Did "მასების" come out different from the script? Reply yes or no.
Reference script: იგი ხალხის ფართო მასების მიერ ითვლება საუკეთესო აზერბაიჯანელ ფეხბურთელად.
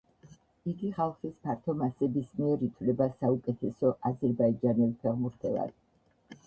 no